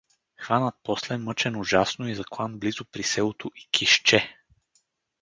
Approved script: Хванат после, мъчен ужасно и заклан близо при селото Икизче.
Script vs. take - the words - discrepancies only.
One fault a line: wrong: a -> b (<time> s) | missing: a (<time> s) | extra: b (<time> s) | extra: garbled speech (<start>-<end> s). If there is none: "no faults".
no faults